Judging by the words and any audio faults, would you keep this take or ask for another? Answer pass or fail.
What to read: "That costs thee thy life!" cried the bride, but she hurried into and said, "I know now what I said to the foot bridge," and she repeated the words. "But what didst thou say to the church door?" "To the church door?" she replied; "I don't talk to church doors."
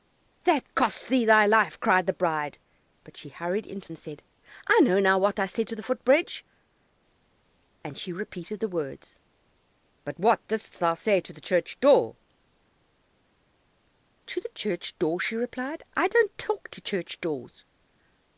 pass